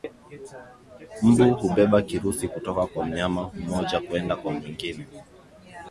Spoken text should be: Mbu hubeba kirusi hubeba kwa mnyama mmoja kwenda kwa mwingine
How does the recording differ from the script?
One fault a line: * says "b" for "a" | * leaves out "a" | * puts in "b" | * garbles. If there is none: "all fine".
* says "kutoka" for "hubeba"